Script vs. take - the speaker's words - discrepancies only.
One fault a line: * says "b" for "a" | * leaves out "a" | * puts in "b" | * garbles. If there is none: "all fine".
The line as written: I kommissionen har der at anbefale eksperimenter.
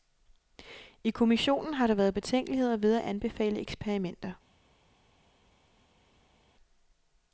* puts in "været betænkeligheder ved"